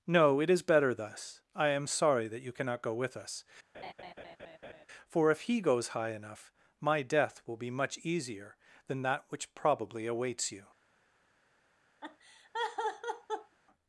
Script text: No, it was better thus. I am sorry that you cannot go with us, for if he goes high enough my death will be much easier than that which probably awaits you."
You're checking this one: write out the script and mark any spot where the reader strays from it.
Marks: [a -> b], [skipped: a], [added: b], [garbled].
No, it [was -> is] better thus. I am sorry that you cannot go with us, for if he goes high enough my death will be much easier than that which probably awaits you."